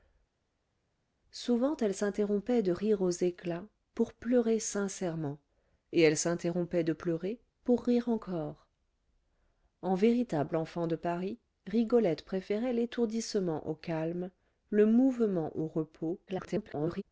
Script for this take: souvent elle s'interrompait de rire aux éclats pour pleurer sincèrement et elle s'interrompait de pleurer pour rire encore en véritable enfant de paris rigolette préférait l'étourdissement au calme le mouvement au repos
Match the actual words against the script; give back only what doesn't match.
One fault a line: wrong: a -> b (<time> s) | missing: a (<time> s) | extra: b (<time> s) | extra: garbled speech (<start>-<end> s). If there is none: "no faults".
extra: garbled speech (16.3-17.0 s)